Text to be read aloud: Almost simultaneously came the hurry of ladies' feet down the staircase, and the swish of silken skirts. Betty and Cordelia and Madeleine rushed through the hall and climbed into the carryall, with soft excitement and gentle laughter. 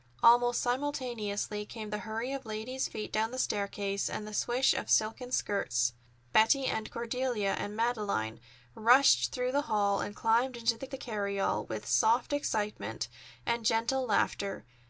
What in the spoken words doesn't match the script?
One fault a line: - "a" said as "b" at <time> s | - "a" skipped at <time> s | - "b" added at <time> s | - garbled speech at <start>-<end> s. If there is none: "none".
- "the" added at 10.9 s